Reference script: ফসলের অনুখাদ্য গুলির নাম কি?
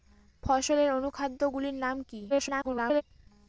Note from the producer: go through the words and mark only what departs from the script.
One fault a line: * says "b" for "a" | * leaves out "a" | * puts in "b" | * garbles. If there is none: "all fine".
* garbles